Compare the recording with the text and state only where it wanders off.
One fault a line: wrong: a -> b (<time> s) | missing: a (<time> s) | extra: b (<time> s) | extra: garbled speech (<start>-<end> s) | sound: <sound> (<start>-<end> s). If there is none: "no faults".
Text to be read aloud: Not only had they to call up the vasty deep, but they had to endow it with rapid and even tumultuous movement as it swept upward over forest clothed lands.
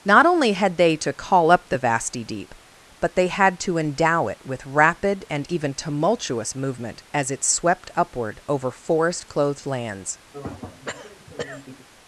sound: throat clearing (10.3-11.9 s)